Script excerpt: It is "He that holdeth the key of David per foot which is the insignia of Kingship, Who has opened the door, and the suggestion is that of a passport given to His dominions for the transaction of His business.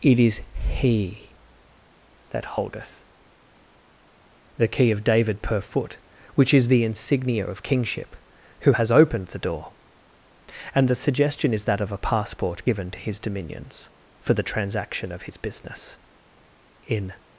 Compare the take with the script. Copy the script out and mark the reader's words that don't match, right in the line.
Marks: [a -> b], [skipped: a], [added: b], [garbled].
It is "He that holdeth the key of David per foot which is the insignia of Kingship, Who has opened the door, and the suggestion is that of a passport given to His dominions for the transaction of His business. [added: In]